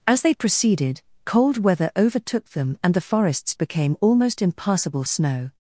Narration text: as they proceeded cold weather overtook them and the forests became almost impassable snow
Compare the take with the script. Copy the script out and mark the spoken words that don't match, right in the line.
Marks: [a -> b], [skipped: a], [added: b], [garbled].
as they proceeded cold weather overtook them and the forests became almost impassable snow